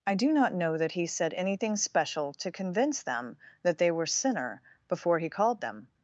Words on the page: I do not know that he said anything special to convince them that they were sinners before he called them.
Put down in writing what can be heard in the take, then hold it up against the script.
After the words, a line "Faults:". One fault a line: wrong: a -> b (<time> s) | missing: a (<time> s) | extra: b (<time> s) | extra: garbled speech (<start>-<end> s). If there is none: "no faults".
I do not know that he said anything special to convince them that they were sinner before he called them.
Faults:
wrong: sinners -> sinner (4.1 s)